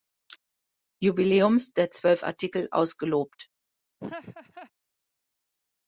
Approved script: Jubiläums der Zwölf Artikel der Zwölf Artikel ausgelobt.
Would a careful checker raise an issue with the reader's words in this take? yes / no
yes